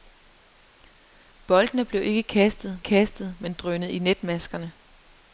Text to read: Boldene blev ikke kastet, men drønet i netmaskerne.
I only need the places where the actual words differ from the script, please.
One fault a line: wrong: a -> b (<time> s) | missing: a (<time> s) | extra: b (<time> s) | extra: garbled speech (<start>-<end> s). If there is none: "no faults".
extra: kastet (2.8 s)